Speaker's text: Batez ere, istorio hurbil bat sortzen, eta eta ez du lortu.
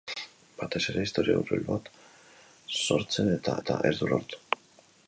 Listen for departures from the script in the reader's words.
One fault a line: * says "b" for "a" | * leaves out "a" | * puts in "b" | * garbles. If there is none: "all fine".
all fine